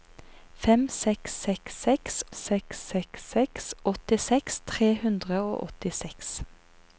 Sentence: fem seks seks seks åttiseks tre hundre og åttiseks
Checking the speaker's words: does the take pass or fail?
fail